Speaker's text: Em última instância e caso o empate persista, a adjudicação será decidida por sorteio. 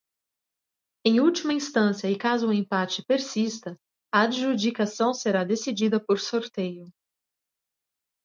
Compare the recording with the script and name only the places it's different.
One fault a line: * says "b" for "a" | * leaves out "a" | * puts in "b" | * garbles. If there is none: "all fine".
all fine